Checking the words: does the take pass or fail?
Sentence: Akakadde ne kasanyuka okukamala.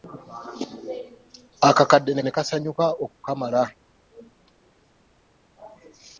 fail